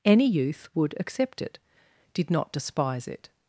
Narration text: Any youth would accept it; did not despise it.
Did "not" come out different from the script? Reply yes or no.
no